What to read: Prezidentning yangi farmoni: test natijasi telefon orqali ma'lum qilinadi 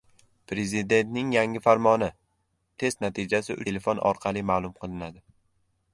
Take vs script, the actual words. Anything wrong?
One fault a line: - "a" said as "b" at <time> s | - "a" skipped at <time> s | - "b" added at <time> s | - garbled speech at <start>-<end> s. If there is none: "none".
none